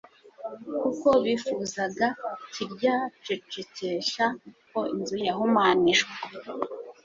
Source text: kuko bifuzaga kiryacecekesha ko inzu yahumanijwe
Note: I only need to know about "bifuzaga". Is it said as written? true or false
true